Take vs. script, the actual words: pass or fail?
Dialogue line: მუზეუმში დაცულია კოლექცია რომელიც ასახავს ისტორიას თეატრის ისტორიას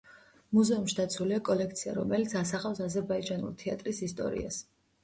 fail